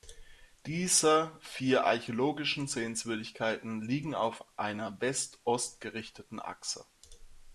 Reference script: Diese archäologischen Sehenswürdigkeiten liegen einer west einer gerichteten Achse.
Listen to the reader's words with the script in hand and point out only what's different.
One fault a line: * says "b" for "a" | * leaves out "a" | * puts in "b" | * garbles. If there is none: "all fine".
* puts in "vier"
* puts in "auf"
* says "ost" for "einer"